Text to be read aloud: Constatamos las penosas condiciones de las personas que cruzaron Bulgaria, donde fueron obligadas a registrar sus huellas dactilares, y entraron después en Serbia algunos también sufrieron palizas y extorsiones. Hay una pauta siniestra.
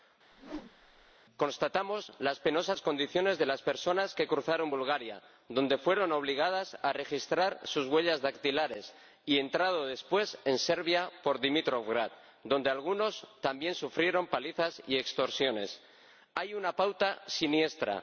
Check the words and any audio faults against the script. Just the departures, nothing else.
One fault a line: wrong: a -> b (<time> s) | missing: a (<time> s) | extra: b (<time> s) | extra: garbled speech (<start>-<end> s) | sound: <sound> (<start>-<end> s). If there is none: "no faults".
sound: whoosh (0.3-1.1 s)
extra: por Dimitrovgrad donde (11.2 s)